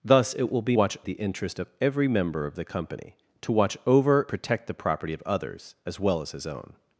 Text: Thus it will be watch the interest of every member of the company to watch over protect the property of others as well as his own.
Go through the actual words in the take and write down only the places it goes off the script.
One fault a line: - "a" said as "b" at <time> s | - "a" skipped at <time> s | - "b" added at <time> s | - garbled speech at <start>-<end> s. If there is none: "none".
none